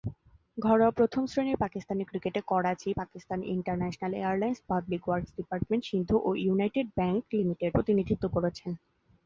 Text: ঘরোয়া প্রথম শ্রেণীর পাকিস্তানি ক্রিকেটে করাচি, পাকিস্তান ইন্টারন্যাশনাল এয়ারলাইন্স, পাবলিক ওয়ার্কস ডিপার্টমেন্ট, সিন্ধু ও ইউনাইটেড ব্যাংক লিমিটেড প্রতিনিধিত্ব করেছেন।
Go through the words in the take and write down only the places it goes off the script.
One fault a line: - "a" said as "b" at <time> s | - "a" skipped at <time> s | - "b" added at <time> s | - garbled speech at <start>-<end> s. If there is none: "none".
none